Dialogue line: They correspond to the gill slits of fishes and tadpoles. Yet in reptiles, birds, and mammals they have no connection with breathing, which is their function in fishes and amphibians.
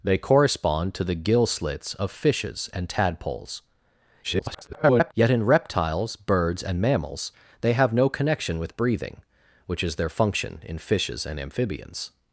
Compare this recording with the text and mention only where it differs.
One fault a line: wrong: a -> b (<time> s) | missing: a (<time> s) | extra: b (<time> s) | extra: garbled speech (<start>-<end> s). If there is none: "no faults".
extra: garbled speech (4.2-5.1 s)